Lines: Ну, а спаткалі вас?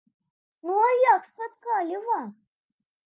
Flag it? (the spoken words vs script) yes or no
yes